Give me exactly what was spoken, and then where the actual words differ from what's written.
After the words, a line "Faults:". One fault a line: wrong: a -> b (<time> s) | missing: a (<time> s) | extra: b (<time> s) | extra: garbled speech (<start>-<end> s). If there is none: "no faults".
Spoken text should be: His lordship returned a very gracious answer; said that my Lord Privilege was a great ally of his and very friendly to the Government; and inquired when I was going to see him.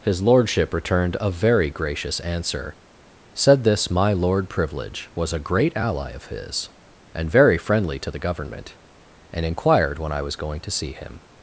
His lordship returned a very gracious answer; said this my Lord Privilege was a great ally of his and very friendly to the Government; and inquired when I was going to see him.
Faults:
wrong: that -> this (3.6 s)